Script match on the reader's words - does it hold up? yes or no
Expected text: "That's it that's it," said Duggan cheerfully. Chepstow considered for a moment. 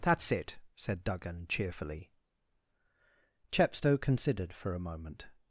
no